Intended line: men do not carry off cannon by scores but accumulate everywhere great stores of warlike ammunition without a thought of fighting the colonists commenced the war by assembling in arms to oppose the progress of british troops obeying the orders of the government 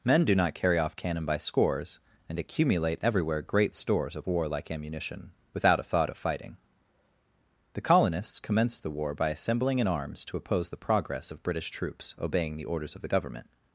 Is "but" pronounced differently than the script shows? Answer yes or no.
yes